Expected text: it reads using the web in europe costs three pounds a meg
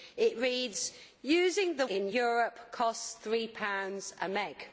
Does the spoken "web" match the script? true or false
false